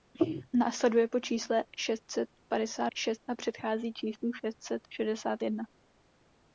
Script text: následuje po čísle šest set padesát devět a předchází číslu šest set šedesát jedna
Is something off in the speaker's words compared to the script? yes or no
yes